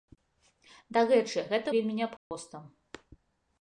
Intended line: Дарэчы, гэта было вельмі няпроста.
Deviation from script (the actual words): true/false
true